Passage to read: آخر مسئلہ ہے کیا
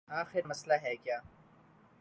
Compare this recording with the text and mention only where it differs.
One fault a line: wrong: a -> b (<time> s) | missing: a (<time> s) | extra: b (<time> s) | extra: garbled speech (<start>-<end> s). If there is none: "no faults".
no faults